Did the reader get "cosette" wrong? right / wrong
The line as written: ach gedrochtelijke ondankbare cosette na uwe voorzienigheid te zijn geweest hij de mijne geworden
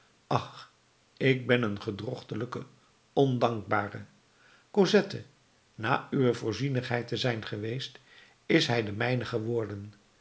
right